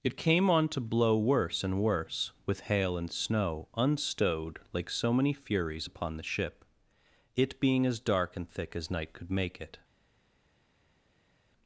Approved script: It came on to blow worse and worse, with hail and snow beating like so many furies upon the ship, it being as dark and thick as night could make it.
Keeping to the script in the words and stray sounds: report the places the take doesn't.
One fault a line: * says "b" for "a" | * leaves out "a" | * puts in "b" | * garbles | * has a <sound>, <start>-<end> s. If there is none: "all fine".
* says "unstowed" for "beating"